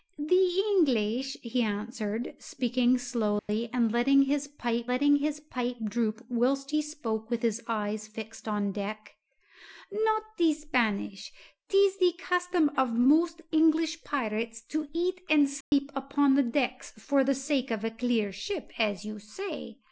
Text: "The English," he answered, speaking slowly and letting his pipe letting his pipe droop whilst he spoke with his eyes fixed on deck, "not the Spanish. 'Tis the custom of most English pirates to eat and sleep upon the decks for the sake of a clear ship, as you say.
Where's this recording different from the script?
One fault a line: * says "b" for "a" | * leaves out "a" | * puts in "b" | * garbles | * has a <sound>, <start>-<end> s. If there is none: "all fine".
* has a dropout, 3.4-3.5 s
* has a dropout, 15.6-15.7 s